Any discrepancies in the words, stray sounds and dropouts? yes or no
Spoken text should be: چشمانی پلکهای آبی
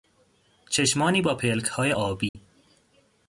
yes